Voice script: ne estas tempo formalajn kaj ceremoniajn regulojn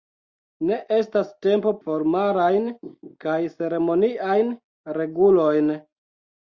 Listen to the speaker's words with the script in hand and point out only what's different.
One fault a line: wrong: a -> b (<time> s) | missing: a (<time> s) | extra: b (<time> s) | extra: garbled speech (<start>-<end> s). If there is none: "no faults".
no faults